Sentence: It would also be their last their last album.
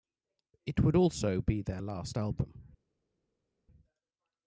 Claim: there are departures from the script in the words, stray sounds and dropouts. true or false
true